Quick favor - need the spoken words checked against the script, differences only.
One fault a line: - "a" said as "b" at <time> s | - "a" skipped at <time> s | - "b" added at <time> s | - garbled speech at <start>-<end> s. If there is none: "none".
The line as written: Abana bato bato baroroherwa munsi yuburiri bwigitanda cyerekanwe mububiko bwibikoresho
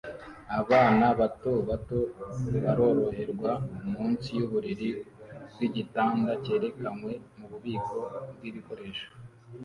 none